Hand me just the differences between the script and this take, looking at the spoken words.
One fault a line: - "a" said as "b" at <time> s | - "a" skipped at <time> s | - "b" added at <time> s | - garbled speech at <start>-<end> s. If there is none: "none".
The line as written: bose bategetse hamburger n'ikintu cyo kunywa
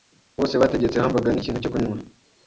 none